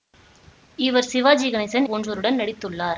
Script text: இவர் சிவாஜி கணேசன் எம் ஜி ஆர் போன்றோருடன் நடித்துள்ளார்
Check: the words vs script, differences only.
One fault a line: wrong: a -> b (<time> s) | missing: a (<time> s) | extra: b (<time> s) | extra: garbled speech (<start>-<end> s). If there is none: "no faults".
missing: எம் ஜி ஆர் (1.9 s)